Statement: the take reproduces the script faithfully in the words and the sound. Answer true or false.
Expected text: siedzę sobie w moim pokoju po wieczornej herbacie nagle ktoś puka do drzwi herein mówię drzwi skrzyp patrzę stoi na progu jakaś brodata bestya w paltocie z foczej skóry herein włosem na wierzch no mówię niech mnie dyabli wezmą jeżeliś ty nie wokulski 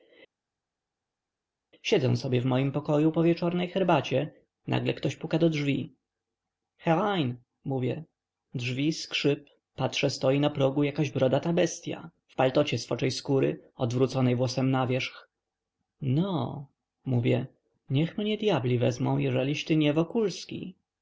false